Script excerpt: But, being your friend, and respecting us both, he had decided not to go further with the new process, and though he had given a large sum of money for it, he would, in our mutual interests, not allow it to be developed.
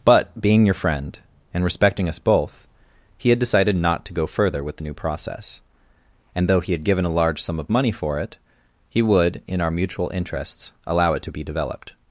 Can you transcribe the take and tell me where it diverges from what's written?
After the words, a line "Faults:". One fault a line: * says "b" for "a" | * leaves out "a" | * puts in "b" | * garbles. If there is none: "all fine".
But, being your friend, and respecting us both, he had decided not to go further with the new process, and though he had given a large sum of money for it, he would, in our mutual interests, allow it to be developed.
Faults:
* leaves out "not"